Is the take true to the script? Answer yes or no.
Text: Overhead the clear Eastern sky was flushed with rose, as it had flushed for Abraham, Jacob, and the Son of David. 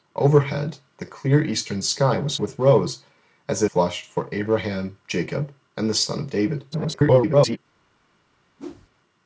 no